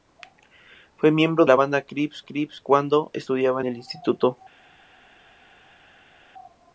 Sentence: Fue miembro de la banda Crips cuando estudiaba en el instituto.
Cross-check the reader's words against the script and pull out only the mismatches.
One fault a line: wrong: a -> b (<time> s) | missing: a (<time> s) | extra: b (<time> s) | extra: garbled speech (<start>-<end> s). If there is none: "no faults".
missing: de (1.4 s)
extra: Crips (2.2 s)
missing: en (3.6 s)